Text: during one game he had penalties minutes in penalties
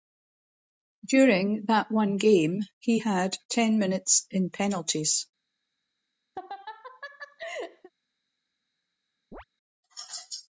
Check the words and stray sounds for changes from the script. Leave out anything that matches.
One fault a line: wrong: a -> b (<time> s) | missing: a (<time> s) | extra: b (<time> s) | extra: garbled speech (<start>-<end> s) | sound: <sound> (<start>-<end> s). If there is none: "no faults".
extra: that (1.7 s)
wrong: penalties -> ten (3.5 s)
sound: laugh (6.4-7.9 s)
sound: chirp (9.3-9.4 s)